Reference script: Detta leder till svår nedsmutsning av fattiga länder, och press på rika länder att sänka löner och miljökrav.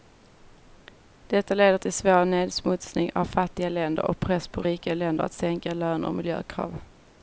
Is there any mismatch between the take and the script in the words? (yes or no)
no